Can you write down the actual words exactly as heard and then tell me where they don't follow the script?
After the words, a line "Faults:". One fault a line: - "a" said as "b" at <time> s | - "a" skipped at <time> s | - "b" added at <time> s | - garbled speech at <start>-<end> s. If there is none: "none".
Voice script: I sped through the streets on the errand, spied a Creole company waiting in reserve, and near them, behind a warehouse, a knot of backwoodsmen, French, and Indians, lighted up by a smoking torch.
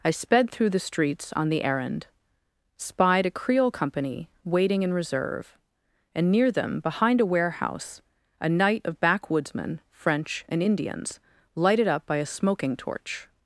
I sped through the streets on the errand, spied a Creole company waiting in reserve, and near them, behind a warehouse, a night of backwoodsmen, French, and Indians, lighted up by a smoking torch.
Faults:
- "knot" said as "night" at 8.5 s